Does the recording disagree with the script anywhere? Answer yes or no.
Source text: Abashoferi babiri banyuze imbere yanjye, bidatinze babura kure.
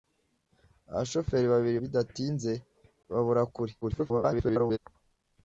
yes